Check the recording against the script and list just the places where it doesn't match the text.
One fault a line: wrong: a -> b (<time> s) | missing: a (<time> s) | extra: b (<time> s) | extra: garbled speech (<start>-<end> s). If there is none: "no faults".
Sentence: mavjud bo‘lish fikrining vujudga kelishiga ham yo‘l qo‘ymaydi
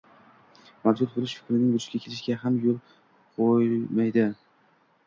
no faults